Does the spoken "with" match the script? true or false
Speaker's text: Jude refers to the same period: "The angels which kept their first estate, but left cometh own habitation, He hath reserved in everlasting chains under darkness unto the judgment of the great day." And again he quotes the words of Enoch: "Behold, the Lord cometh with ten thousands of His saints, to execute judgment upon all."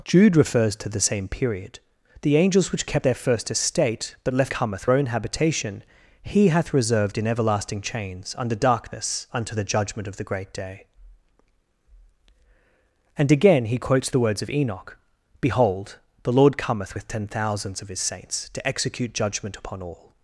true